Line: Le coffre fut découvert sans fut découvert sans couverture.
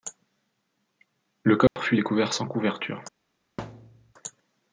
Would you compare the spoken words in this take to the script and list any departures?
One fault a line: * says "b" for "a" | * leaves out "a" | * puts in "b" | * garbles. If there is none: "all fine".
* leaves out "fut découvert sans"